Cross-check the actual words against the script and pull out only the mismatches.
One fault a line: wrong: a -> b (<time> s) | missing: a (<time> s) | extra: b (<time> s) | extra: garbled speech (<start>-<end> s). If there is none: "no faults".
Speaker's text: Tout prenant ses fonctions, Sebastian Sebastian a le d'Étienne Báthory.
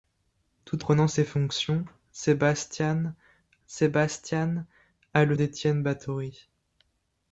no faults